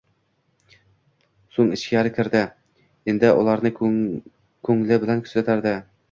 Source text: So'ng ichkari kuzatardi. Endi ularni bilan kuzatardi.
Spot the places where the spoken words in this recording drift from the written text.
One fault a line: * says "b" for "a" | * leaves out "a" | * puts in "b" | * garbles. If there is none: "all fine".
* says "kirdi" for "kuzatardi"
* puts in "ko'ngli"